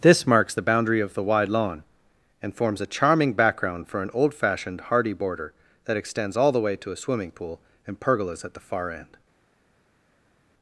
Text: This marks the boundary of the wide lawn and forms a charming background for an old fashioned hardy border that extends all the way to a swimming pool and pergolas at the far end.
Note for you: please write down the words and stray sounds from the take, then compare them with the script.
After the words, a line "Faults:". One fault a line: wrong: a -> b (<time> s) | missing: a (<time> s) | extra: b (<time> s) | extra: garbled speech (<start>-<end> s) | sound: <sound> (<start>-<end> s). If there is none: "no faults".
This marks the boundary of the wide lawn and forms a charming background for an old fashioned hardy border that extends all the way to a swimming pool and pergolas at the far end.
Faults:
no faults